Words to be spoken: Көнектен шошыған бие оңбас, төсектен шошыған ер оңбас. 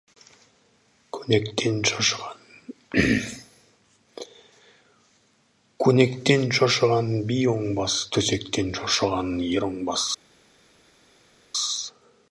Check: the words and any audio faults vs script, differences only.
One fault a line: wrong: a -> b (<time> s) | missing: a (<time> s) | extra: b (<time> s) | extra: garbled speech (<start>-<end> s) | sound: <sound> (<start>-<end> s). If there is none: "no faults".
no faults